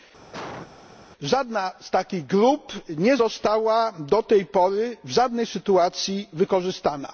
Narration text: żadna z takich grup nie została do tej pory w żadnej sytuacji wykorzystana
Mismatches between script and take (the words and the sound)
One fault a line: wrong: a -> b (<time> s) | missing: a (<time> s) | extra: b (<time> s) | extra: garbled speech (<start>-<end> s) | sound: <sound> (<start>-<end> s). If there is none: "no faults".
sound: cough (0.3-0.7 s)